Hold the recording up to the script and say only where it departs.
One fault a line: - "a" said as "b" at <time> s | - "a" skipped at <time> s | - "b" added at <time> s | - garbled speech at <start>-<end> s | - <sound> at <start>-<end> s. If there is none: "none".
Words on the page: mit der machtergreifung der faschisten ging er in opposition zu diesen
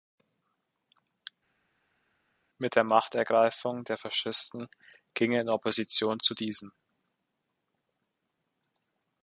none